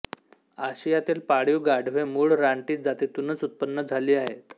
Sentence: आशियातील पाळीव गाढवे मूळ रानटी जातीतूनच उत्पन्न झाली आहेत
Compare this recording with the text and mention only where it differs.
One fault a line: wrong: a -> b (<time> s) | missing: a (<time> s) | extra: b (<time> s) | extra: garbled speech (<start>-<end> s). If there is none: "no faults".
no faults